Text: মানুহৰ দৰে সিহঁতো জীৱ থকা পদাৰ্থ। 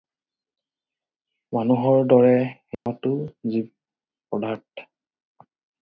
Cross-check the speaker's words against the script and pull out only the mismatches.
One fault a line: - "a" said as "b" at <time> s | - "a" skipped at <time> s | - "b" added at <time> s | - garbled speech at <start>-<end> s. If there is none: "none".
- "থকা" skipped at 3.7 s